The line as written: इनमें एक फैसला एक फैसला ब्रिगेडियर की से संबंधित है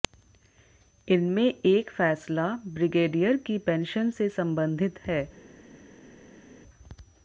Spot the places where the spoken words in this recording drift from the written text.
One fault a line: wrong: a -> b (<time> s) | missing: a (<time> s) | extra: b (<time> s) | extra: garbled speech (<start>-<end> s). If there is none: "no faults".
missing: एक फैसला (2.5 s)
extra: पेंशन (3.7 s)